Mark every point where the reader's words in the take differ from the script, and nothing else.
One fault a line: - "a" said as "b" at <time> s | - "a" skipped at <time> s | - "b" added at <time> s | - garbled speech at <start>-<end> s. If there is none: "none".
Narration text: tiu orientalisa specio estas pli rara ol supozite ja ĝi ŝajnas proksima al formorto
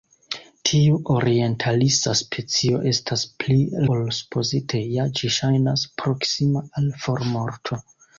- "rara" skipped at 3.6 s